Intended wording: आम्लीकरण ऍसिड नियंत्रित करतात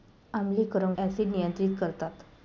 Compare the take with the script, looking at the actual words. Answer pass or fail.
pass